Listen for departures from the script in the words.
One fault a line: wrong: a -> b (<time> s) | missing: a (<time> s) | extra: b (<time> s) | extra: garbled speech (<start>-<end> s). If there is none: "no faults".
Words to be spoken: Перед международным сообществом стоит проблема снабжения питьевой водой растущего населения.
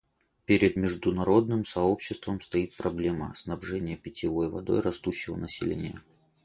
no faults